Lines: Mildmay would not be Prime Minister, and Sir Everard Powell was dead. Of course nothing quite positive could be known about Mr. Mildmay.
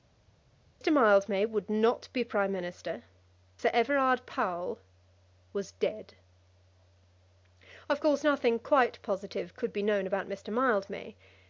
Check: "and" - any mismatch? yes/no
yes